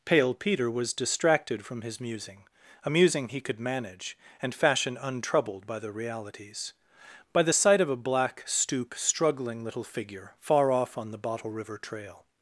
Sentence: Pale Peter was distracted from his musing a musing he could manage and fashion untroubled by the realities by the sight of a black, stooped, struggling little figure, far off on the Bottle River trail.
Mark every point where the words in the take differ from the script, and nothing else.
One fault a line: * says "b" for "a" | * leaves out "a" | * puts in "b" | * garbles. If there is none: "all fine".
* says "stoop" for "stooped"